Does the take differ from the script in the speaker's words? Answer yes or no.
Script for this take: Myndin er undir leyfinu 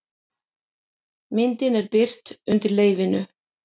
yes